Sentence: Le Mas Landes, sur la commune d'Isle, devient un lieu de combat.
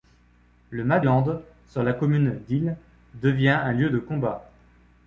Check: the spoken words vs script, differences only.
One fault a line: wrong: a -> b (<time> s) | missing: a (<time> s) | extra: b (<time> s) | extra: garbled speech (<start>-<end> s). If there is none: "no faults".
no faults